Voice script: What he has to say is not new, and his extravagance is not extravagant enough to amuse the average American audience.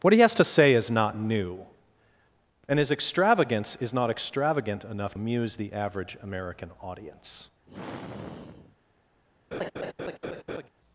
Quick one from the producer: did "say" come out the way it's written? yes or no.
yes